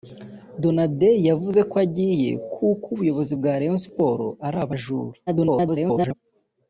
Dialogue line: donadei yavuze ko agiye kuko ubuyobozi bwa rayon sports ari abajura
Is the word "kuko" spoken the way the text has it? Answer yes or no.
yes